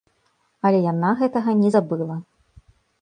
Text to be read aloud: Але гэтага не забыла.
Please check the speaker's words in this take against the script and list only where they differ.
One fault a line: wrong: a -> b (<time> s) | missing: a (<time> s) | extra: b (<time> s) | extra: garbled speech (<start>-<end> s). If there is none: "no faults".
extra: яна (0.9 s)